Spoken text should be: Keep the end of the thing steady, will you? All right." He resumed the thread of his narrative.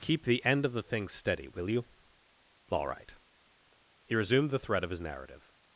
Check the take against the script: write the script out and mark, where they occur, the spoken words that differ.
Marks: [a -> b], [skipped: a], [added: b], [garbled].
Keep the end of the thing steady, will you? All right." He resumed the thread of his narrative.